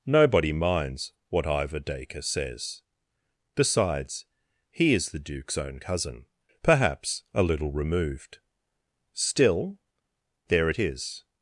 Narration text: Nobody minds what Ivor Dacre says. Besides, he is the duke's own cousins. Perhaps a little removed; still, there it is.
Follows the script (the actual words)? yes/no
no